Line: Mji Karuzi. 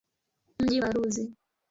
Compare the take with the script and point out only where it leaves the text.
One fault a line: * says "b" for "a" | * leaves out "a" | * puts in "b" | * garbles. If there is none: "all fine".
all fine